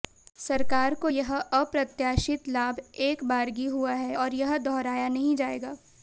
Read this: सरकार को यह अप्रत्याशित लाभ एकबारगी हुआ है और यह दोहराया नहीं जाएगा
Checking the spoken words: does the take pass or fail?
pass